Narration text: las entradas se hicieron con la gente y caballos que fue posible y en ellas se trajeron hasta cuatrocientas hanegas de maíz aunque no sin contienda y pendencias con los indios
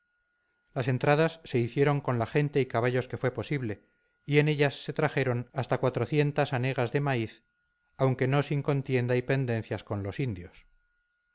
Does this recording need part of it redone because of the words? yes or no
no